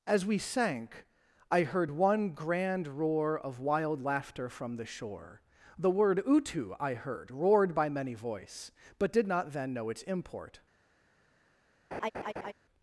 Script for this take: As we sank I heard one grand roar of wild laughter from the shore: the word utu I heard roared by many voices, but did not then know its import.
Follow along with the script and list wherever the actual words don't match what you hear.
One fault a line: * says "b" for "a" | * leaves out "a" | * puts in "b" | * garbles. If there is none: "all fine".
* says "voice" for "voices"